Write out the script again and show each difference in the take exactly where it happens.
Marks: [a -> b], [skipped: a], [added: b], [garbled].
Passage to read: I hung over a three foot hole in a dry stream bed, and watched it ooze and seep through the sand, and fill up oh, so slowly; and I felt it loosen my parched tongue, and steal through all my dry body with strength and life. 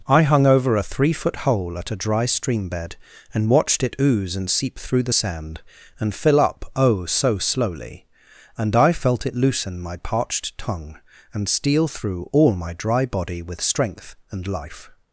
I hung over a three foot hole [in -> at] a dry stream bed, and watched it ooze and seep through the sand, and fill up oh, so slowly; and I felt it loosen my parched tongue, and steal through all my dry body with strength and life.